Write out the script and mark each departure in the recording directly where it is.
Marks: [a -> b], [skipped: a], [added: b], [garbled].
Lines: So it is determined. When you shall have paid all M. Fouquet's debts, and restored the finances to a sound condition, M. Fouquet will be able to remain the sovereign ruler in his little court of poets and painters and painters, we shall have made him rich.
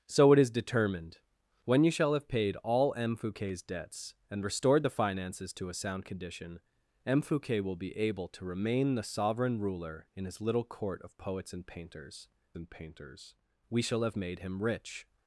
So it is determined. When you shall have paid all M. Fouquet's debts, and restored the finances to a sound condition, M. Fouquet will be able to remain the sovereign ruler in his little court of poets and painters and painters, we shall have made him rich.